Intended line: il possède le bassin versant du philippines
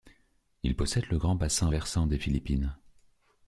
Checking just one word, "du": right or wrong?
wrong